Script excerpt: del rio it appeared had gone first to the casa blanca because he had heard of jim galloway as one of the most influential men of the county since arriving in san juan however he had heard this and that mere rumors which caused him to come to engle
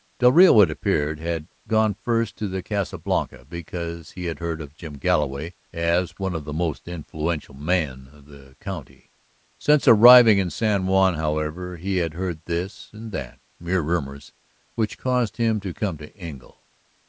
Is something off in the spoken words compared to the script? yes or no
no